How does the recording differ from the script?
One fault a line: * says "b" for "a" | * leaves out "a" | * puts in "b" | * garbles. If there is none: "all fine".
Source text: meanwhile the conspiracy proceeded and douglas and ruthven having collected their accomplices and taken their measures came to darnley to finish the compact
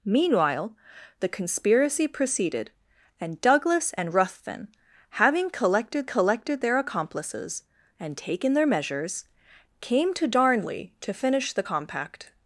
* puts in "collected"